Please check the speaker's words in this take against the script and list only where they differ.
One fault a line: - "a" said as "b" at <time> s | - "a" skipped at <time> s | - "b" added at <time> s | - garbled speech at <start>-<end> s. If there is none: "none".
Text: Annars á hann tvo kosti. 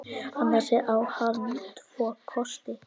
none